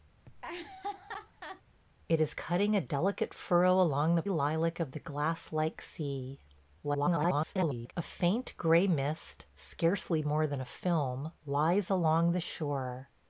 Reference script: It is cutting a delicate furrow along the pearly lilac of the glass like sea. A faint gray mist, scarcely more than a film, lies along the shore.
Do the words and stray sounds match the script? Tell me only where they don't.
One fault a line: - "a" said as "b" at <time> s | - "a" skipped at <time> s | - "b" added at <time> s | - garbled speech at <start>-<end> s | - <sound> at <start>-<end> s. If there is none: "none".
- laugh at 0.3-1.6 s
- "pearly" skipped at 4.2 s
- garbled speech at 6.8-7.9 s